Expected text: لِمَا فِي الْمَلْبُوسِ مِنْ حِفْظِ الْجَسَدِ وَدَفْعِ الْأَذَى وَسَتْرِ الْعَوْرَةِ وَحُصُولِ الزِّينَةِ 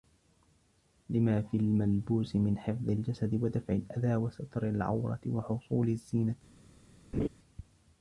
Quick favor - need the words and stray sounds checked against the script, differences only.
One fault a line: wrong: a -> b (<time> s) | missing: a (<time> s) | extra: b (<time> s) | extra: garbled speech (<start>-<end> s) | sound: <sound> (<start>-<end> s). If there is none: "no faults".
sound: laugh (7.1-7.3 s)